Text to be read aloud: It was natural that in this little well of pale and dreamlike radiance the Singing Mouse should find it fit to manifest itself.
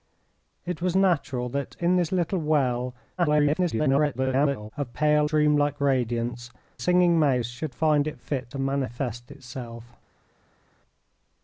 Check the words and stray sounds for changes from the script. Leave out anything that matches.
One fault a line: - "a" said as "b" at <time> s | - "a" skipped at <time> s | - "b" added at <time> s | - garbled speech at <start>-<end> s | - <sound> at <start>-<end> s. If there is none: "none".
- garbled speech at 3.2-4.7 s
- "and" skipped at 5.3 s
- "the" skipped at 6.5 s